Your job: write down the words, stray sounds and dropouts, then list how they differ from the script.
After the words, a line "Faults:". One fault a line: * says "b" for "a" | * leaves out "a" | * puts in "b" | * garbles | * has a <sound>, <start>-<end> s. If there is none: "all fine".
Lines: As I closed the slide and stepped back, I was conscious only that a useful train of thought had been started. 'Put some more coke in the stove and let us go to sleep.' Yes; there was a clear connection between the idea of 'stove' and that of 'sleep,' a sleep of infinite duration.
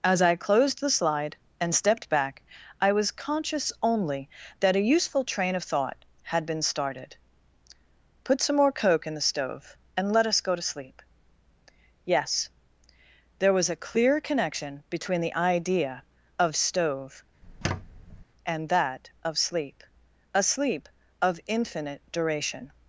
As I closed the slide and stepped back, I was conscious only that a useful train of thought had been started. 'Put some more coke in the stove and let us go to sleep.' Yes; there was a clear connection between the idea of 'stove' and that of 'sleep,' a sleep of infinite duration.
Faults:
* has a squeak, 17.4-18.2 s